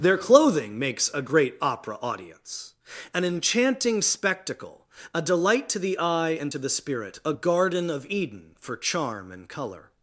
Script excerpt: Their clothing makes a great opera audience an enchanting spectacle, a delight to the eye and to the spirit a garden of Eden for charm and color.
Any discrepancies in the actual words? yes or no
no